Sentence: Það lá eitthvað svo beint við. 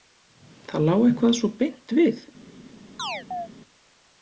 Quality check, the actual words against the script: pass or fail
pass